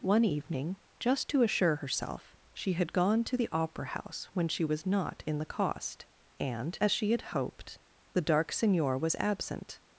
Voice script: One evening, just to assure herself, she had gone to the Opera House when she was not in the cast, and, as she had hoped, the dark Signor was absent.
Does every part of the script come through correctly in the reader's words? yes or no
no